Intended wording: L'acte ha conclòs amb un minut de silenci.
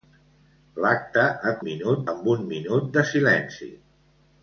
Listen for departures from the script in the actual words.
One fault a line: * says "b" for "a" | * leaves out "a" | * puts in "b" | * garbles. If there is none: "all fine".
* says "minut" for "conclòs"